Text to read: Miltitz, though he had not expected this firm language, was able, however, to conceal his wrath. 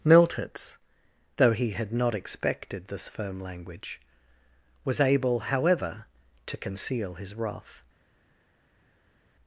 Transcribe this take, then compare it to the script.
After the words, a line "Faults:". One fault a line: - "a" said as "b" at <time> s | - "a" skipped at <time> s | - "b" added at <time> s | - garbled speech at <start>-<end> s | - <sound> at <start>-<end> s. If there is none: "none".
Miltitz, though he had not expected this firm language, was able, however, to conceal his wrath.
Faults:
none